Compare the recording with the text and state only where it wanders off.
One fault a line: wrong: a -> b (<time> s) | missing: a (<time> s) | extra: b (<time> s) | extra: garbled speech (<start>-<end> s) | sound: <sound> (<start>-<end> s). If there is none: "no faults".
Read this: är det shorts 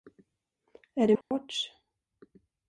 sound: dropout (1.2-1.3 s)